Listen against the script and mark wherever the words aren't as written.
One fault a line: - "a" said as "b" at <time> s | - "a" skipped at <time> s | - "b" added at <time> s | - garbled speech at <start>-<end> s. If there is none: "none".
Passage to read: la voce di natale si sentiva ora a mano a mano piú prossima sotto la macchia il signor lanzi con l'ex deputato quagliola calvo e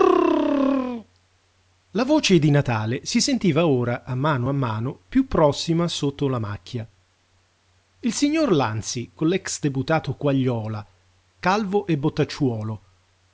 none